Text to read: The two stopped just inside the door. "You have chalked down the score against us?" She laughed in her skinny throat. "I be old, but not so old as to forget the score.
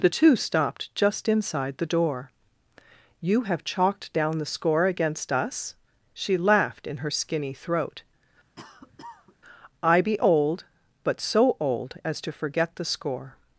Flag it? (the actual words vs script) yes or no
yes